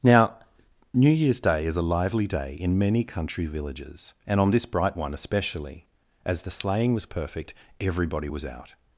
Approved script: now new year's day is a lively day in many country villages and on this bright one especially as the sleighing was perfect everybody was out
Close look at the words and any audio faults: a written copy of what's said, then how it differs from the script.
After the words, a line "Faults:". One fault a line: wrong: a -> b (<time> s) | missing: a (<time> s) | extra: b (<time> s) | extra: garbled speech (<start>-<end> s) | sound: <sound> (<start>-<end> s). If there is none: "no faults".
now new year's day is a lively day in many country villages and on this bright one especially as the sleighing was perfect everybody was out
Faults:
no faults